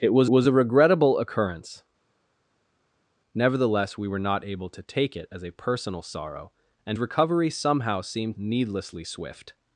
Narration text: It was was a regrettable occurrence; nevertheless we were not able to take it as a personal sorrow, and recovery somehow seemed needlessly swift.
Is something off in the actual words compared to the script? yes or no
no